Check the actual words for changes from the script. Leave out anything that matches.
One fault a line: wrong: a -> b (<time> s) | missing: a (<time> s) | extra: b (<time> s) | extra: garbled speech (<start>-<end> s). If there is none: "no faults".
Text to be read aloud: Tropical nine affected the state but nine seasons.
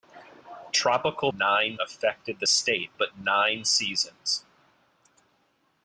no faults